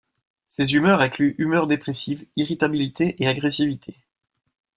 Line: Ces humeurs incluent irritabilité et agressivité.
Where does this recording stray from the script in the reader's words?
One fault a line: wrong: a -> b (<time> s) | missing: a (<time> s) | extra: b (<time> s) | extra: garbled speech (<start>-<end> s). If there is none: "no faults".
extra: humeur dépressive (1.4 s)